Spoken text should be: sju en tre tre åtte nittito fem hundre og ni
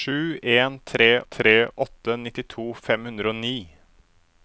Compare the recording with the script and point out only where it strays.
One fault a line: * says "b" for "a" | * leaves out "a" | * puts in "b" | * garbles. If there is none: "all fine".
all fine